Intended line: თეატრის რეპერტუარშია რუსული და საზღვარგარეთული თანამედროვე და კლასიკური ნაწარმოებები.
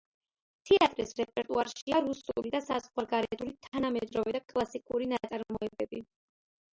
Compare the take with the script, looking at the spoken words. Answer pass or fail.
pass